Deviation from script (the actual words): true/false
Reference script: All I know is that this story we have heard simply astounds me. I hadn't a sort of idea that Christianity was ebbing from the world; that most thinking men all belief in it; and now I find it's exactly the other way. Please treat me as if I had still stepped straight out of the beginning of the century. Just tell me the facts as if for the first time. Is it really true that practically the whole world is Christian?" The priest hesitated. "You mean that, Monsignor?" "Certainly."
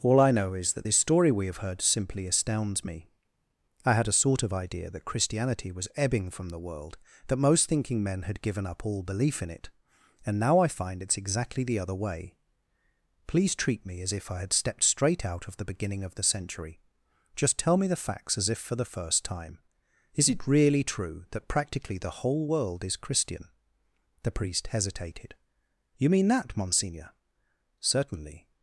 true